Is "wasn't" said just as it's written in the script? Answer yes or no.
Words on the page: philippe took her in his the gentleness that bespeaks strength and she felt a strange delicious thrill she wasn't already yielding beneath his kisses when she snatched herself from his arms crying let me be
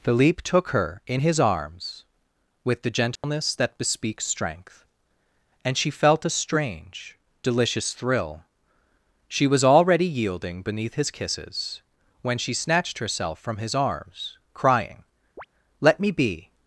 no